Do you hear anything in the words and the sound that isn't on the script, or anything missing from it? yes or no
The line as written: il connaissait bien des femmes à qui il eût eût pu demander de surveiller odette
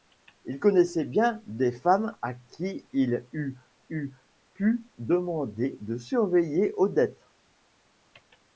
no